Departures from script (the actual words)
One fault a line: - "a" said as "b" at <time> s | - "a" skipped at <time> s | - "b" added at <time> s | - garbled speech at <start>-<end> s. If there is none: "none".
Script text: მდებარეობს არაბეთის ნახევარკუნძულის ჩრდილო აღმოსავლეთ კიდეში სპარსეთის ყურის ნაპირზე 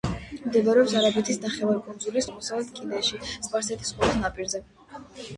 - "ჩრდილო" skipped at 2.3 s